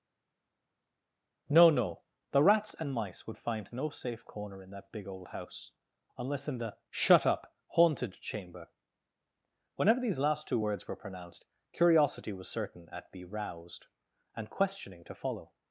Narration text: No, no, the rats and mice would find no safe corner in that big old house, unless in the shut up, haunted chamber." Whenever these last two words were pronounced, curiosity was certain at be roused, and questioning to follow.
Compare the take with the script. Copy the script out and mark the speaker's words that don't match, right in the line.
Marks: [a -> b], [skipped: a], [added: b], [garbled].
No, no, the rats and mice would find no safe corner in that big old house, unless in the shut up, haunted chamber." Whenever these last two words were pronounced, curiosity was certain at be roused, and questioning to follow.